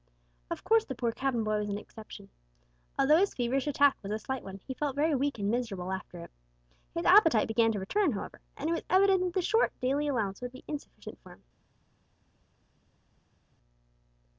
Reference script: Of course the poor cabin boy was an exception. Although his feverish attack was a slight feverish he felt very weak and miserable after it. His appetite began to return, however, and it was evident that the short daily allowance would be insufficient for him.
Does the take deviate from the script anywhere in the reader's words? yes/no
yes